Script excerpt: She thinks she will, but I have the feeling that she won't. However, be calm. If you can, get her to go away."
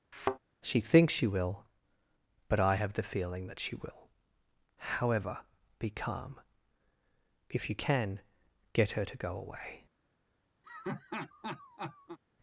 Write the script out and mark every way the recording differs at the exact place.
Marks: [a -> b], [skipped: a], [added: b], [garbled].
She thinks she will, but I have the feeling that she [won't. -> will] However, be calm. If you can, get her to go away."